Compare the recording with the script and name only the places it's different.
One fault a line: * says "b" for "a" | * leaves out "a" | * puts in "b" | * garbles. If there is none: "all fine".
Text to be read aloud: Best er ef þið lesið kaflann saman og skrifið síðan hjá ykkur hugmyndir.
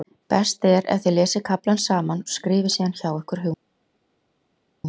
all fine